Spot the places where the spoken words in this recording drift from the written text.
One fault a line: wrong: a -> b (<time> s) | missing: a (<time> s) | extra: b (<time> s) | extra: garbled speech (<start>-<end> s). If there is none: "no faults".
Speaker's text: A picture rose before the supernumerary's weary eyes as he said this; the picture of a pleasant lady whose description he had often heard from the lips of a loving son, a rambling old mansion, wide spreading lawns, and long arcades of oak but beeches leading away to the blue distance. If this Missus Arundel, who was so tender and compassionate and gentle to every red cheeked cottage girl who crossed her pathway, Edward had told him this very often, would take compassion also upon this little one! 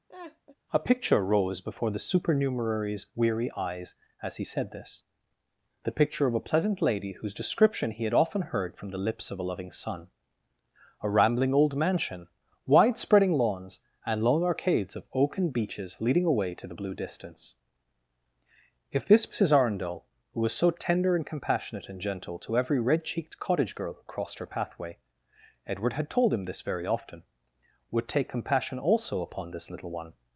wrong: but -> and (15.4 s)